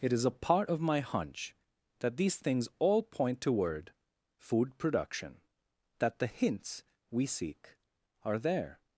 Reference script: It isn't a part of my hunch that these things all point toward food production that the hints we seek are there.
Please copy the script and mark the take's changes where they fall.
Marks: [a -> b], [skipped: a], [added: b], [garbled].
It [isn't -> is] a part of my hunch that these things all point toward food production that the hints we seek are there.